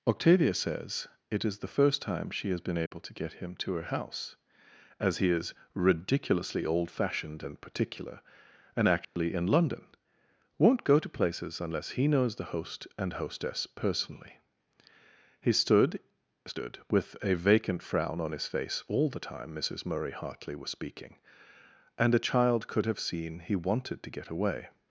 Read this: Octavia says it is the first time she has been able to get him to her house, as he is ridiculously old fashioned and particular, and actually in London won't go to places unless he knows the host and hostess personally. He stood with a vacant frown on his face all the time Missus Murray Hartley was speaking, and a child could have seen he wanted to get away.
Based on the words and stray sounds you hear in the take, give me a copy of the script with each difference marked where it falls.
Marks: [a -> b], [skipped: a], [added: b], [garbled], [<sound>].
Octavia says it is the first time she has been able [dropout] to get him to her house, as he is ridiculously old fashioned and particular, and actually [dropout] in London won't go to places unless he knows the host and hostess personally. He stood [added: stood] with a vacant frown on his face all the time Missus Murray Hartley was speaking, and a child could have seen he wanted to get away.